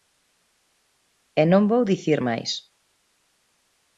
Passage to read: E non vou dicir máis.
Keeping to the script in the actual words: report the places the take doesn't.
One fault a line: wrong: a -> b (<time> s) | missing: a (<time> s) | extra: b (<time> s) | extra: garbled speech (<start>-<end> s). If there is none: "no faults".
no faults